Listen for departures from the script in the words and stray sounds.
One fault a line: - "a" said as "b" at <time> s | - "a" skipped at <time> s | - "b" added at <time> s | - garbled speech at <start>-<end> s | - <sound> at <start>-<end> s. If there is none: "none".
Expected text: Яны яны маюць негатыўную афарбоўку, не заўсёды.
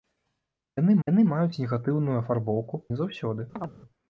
- chirp at 3.6-3.7 s